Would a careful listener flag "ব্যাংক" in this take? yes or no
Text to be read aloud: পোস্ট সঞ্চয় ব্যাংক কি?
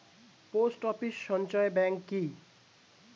no